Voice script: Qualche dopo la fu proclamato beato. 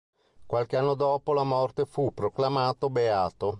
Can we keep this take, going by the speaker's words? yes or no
no